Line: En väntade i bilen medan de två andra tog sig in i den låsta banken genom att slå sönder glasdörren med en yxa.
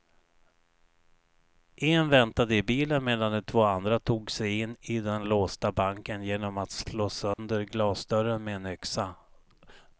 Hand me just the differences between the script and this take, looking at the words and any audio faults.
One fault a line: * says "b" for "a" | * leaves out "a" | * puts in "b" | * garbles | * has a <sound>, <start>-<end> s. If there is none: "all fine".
* has a dropout, 7.3-7.4 s